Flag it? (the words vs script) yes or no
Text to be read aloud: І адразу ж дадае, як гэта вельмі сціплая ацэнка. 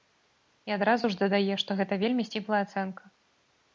yes